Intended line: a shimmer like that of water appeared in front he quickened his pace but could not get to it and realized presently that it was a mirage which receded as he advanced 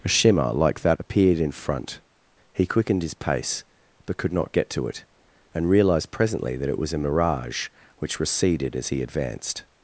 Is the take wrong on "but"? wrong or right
right